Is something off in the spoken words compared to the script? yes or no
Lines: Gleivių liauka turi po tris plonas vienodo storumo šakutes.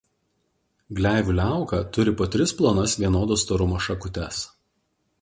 no